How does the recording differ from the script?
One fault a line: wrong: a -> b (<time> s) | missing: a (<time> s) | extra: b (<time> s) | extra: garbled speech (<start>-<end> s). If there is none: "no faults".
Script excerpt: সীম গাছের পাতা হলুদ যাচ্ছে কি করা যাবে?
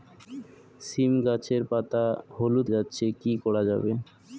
no faults